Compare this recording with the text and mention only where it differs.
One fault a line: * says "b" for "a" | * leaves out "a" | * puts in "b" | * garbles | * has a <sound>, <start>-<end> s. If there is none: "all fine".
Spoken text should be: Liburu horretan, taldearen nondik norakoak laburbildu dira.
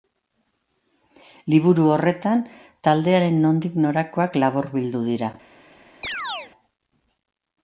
* has a chirp, 6.0-6.5 s